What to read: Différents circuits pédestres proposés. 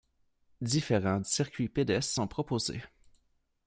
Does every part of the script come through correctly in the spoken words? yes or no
no